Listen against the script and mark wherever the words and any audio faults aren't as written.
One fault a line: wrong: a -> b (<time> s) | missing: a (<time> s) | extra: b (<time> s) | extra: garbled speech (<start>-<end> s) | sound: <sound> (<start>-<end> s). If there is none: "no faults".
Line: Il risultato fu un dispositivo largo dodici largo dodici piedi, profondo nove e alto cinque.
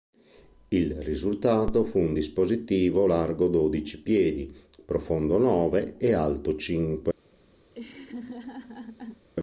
missing: largo dodici (4.0 s)
sound: laugh (7.7-9.3 s)